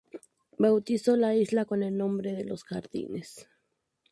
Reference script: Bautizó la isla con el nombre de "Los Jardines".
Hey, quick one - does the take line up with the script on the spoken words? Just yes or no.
yes